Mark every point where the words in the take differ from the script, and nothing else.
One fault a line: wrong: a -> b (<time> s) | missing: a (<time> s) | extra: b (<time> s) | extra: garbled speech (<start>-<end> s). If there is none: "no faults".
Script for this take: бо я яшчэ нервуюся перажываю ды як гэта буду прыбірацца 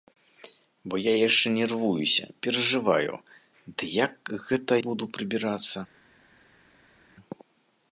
no faults